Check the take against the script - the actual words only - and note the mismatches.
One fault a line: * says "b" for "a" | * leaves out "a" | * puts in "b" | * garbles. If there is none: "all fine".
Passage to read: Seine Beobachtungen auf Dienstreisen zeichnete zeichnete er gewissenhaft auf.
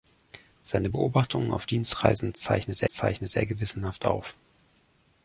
all fine